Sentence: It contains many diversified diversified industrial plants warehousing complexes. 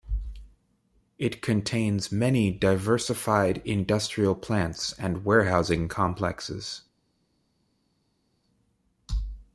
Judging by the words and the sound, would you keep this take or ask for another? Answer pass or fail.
fail